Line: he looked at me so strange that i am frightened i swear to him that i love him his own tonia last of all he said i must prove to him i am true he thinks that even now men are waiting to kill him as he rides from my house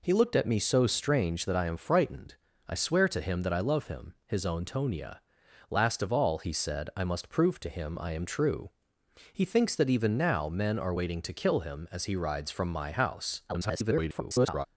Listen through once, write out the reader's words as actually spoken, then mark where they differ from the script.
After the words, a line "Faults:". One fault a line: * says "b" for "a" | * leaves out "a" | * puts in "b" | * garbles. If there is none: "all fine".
he looked at me so strange that i am frightened i swear to him that i love him his own tonia last of all he said i must prove to him i am true he thinks that even now men are waiting to kill him as he rides from my house [garbled]
Faults:
* garbles